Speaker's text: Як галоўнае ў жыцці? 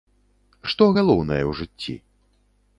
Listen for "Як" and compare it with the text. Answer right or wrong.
wrong